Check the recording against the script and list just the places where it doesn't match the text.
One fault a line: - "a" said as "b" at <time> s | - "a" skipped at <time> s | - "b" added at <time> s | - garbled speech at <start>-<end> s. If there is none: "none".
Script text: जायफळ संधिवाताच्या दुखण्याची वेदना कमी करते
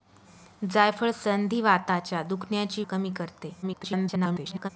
- "वेदना" skipped at 2.8 s
- garbled speech at 3.6-4.7 s